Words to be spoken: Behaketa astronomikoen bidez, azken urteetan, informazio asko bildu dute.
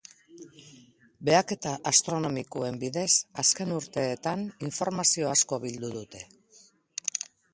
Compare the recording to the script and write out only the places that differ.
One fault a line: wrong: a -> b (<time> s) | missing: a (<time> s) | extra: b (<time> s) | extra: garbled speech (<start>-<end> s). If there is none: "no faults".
no faults